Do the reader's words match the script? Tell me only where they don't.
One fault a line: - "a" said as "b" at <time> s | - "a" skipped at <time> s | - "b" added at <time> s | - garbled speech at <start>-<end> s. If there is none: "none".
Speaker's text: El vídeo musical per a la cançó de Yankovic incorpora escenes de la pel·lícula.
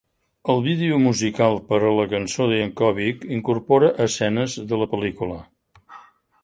none